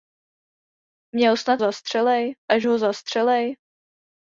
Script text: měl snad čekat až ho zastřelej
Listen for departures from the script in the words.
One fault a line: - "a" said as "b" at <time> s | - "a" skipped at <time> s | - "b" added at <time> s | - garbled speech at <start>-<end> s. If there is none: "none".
- "čekat" said as "zastřelej" at 1.6 s